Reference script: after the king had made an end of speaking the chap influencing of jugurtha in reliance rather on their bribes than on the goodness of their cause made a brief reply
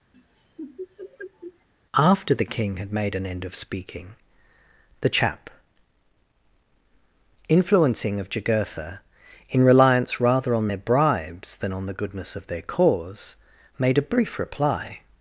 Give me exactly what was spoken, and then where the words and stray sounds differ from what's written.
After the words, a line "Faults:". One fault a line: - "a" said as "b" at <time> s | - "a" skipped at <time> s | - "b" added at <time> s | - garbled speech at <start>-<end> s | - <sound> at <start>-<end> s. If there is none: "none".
after the king had made an end of speaking the chap influencing of jugurtha in reliance rather on their bribes than on the goodness of their cause made a brief reply
Faults:
- laugh at 0.1-1.7 s